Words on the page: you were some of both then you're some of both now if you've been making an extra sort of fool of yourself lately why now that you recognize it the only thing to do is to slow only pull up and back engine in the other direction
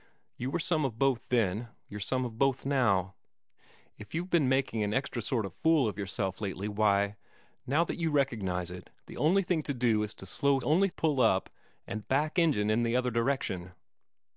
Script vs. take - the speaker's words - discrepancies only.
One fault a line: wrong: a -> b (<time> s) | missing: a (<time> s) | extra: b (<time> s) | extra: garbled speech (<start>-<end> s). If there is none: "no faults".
no faults